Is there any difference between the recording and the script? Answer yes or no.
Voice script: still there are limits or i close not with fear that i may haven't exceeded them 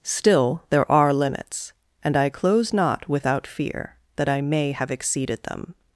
yes